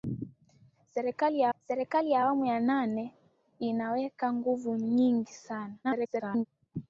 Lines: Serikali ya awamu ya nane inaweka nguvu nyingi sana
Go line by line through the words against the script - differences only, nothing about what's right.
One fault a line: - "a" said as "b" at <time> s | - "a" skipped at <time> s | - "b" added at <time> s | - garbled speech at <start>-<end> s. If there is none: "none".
- "serikali ya" added at 1.6 s
- garbled speech at 5.8-6.5 s